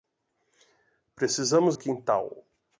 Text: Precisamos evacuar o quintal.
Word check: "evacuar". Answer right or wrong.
wrong